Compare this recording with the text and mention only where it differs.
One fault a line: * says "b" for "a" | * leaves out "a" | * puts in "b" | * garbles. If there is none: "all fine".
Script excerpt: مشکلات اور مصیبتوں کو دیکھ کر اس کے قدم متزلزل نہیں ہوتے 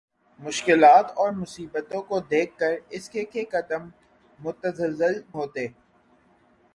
* puts in "کے"
* leaves out "نہیں"